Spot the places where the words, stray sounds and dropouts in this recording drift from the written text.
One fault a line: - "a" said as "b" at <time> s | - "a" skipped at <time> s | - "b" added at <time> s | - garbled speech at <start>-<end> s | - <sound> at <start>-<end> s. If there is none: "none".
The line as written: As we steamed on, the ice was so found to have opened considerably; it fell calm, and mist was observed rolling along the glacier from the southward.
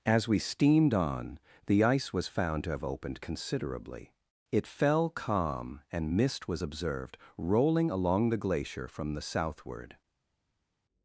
- "so" skipped at 2.3 s